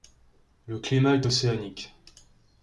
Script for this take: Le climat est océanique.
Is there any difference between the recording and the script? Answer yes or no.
no